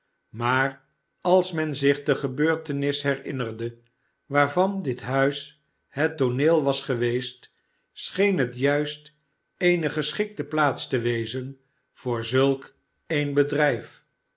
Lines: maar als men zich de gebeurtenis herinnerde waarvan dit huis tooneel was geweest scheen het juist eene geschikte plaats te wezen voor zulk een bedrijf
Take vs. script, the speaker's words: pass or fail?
fail